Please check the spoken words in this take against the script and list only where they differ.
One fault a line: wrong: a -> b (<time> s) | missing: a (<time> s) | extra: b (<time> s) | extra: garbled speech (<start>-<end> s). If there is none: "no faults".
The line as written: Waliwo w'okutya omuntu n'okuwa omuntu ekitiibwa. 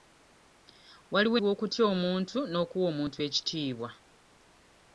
no faults